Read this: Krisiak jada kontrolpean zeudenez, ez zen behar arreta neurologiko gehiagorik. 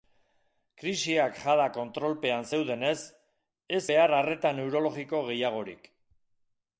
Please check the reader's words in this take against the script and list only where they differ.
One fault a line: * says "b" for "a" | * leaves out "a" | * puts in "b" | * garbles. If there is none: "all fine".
* leaves out "zen"